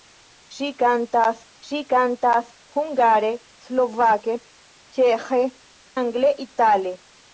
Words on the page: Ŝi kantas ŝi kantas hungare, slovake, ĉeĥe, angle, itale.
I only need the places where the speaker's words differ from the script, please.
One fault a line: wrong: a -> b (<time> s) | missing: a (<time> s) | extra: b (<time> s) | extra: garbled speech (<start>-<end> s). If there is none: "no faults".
no faults